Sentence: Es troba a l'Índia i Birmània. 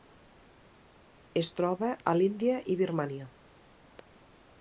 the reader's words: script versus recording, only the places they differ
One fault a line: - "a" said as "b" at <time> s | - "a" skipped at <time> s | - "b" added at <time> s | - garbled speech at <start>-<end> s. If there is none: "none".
none